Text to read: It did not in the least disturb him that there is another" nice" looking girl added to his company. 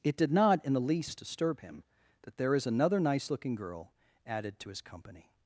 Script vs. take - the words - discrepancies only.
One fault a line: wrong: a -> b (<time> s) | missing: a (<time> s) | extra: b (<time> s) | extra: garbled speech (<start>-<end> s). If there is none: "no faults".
no faults